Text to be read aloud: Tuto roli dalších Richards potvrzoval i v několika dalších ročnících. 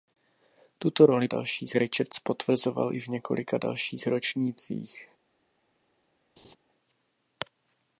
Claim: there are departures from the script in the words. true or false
false